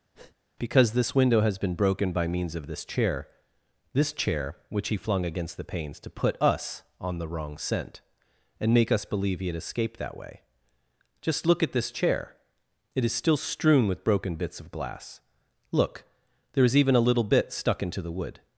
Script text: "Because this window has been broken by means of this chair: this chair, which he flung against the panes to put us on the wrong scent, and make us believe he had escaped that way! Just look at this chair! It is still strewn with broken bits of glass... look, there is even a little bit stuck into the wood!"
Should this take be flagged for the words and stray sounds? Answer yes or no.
yes